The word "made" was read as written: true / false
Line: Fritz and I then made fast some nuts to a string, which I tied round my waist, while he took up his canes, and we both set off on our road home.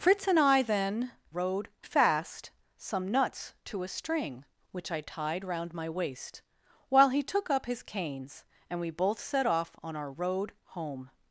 false